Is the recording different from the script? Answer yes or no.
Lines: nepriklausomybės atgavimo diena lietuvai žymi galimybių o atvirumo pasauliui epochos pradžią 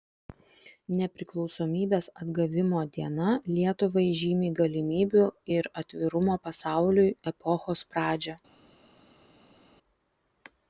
yes